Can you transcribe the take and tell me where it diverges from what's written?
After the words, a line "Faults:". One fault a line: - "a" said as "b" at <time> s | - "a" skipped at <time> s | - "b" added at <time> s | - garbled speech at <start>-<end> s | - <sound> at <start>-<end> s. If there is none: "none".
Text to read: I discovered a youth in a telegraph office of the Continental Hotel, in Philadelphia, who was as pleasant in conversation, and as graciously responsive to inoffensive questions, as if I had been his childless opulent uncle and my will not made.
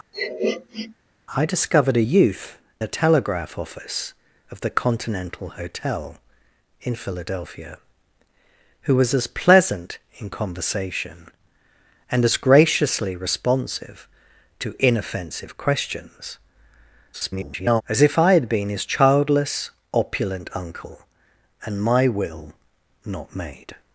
I discovered a youth a telegraph office of the Continental Hotel, in Philadelphia, who was as pleasant in conversation, and as graciously responsive to inoffensive questions, [garbled] as if I had been his childless opulent uncle and my will not made.
Faults:
- sniff at 0.1-0.9 s
- "in" skipped at 2.6 s
- garbled speech at 17.1-17.8 s